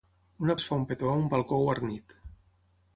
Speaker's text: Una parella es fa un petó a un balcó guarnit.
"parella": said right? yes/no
no